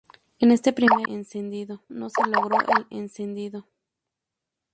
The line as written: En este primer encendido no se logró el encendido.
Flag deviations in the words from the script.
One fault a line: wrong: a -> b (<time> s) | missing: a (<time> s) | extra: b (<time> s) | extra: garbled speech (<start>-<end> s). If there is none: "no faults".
no faults